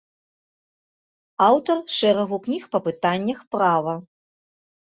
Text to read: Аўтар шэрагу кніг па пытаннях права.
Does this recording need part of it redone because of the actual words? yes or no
no